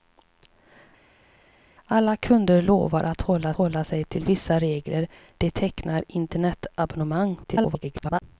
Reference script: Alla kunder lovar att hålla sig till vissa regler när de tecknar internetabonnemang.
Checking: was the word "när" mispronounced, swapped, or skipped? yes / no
yes